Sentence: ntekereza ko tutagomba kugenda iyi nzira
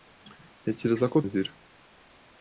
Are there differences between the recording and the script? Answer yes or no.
yes